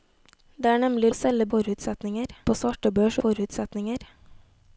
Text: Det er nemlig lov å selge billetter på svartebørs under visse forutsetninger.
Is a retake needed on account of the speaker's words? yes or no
yes